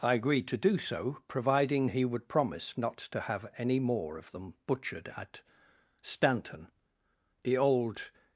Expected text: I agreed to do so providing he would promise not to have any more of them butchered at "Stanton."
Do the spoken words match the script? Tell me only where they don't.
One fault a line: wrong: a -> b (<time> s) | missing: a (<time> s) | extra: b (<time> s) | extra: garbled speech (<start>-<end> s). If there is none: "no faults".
extra: The old (7.4 s)